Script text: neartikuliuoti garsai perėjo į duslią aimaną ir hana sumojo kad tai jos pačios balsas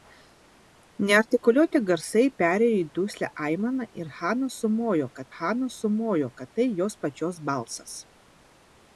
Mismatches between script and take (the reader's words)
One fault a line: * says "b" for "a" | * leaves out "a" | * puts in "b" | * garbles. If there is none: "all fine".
* puts in "hana sumojo kad"